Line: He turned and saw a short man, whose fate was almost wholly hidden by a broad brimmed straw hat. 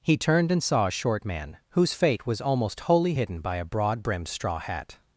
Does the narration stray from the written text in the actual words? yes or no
no